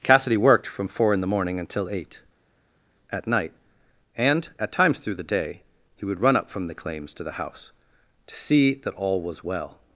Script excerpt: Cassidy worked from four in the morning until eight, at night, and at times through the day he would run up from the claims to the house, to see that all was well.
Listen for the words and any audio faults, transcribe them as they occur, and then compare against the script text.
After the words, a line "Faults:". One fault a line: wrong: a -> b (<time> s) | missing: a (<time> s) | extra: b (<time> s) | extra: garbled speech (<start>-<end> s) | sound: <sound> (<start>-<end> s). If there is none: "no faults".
Cassidy worked from four in the morning until eight, at night, and at times through the day he would run up from the claims to the house, to see that all was well.
Faults:
no faults